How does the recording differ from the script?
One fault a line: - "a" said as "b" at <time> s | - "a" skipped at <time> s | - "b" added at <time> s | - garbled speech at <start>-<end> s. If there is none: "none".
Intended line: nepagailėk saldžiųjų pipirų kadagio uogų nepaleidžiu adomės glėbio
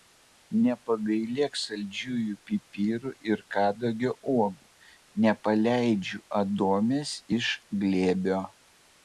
- "ir" added at 3.3 s
- "iš" added at 7.4 s